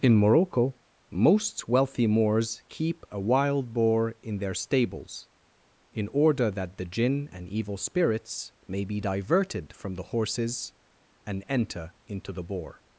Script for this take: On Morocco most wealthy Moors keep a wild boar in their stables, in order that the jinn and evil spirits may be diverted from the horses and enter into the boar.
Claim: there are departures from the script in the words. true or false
true